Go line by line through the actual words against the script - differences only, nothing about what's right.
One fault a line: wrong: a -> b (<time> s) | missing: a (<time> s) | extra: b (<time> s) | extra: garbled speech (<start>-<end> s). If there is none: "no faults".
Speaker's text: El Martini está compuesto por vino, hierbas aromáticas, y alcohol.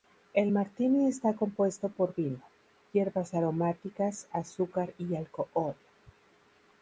extra: azúcar (4.3 s)